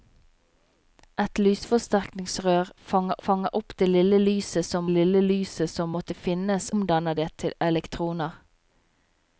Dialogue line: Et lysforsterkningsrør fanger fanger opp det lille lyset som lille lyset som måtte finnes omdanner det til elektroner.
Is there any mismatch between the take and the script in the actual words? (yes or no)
no